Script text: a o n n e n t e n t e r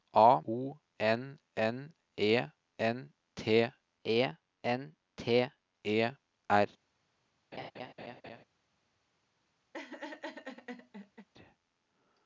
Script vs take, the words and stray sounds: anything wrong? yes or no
yes